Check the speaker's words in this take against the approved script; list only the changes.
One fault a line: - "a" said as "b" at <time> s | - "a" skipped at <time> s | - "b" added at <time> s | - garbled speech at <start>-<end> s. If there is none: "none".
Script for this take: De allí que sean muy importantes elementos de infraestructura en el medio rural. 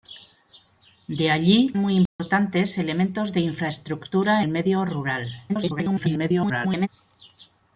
- "que sean" skipped at 1.8 s
- "en" skipped at 4.4 s
- garbled speech at 5.5-6.9 s